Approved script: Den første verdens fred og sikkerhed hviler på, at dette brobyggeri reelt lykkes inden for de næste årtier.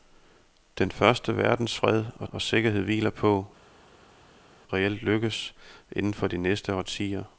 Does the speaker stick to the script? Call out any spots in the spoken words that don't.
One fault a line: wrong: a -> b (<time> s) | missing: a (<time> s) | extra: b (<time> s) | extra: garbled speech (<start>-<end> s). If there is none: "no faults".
extra: og (2.3 s)
missing: at dette brobyggeri (3.5 s)